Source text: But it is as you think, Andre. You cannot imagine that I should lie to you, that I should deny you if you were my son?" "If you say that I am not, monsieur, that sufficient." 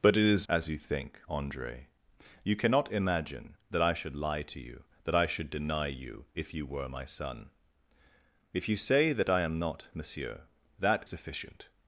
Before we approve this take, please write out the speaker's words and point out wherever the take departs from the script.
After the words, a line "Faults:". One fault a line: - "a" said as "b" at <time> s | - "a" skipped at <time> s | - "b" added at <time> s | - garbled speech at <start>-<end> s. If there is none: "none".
But it is as you think, Andre. You cannot imagine that I should lie to you, that I should deny you if you were my son?" "If you say that I am not, monsieur, that sufficient."
Faults:
none